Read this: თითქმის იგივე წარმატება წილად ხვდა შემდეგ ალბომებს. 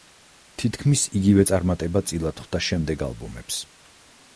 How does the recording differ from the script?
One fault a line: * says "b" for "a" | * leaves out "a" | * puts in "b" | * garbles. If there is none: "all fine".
all fine